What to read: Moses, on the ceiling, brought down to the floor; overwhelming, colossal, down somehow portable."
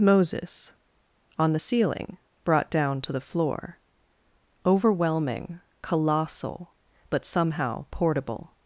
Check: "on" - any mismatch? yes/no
no